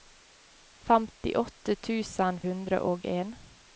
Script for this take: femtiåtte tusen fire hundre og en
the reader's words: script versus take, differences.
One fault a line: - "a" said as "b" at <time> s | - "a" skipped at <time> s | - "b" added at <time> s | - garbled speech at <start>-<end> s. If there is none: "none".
- "fire" skipped at 2.4 s